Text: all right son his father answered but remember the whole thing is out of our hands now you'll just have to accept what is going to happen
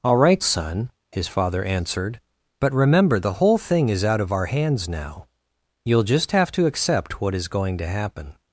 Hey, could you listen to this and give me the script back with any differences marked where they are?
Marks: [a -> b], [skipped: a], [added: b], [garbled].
all right son his father answered but remember the whole thing is out of our hands now you'll just have to accept what is going to happen